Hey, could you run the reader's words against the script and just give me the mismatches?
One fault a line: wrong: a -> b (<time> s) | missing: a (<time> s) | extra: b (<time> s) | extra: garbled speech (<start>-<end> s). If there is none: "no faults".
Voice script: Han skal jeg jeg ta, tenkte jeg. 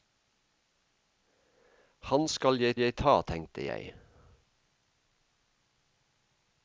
no faults